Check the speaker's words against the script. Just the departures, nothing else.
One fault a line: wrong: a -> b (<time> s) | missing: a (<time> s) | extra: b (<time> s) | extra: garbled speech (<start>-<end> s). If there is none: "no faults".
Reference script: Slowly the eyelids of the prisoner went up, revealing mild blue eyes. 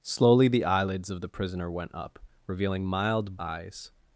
missing: blue (3.4 s)